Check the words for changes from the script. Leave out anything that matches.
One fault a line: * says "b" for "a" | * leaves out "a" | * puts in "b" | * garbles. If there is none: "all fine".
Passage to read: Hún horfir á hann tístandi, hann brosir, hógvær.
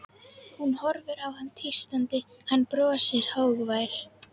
all fine